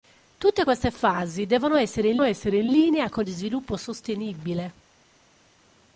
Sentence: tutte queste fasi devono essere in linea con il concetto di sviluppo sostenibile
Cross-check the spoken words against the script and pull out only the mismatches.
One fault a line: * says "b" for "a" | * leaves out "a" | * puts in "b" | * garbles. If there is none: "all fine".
* puts in "essere in"
* leaves out "il concetto"